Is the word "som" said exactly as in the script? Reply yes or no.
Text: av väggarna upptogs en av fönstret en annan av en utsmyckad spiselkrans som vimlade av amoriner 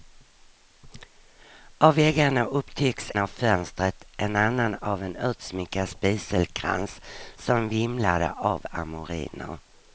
yes